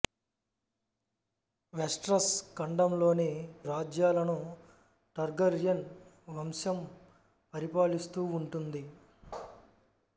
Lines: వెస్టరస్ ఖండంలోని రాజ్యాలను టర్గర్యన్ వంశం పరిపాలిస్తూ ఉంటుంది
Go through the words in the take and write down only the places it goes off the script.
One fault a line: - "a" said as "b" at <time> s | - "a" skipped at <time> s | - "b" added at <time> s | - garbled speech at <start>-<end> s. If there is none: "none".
none